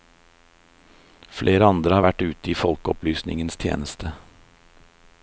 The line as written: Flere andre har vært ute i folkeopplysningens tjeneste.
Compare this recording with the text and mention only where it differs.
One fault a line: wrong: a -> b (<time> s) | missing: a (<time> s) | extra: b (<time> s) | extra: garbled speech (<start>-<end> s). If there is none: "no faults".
no faults